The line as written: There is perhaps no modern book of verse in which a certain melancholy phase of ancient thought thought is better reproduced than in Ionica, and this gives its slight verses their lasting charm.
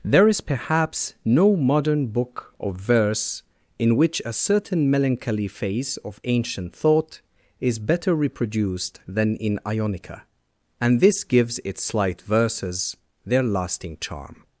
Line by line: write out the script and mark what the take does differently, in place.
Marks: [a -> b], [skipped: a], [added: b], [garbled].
There is perhaps no modern book of verse in which a certain melancholy phase of ancient thought [skipped: thought] is better reproduced than in Ionica, and this gives its slight verses their lasting charm.